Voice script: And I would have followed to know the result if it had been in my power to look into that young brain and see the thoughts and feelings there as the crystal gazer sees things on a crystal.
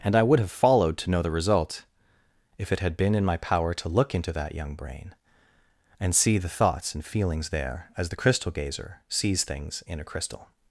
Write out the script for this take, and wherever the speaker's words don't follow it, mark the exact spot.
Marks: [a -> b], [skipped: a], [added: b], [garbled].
And I would have followed to know the result if it had been in my power to look into that young brain and see the thoughts and feelings there as the crystal gazer sees things [on -> in] a crystal.